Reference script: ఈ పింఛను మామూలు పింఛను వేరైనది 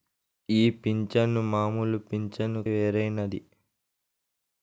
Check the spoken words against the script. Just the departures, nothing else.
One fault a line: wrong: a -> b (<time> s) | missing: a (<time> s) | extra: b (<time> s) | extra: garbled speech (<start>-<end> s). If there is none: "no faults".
no faults